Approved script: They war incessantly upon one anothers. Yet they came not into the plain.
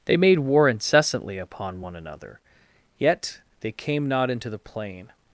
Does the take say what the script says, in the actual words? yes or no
no